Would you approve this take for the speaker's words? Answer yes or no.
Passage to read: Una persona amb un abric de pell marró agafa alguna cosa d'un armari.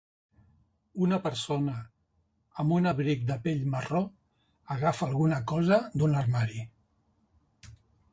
yes